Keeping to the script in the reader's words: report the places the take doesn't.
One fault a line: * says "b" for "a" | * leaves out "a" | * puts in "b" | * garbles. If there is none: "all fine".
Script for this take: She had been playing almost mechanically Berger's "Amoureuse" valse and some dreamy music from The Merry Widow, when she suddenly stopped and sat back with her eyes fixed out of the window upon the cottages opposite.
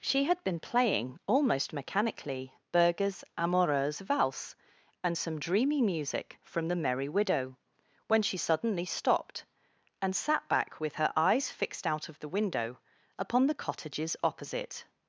all fine